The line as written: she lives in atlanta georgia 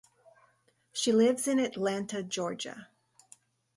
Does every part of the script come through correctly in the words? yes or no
yes